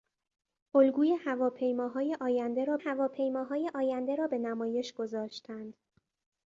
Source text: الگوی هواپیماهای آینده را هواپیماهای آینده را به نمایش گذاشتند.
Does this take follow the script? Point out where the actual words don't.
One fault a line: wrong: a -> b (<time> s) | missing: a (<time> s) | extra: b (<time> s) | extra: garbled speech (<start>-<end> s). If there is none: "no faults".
no faults